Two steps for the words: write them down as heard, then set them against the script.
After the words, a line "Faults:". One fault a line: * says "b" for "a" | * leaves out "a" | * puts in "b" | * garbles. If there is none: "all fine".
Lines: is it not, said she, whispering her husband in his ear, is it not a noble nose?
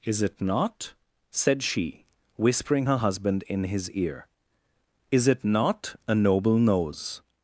is it not, said she, whispering her husband in his ear, is it not a noble nose?
Faults:
all fine